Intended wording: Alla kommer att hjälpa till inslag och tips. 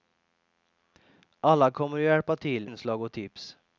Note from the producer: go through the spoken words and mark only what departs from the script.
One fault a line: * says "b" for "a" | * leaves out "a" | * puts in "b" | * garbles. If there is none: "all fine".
all fine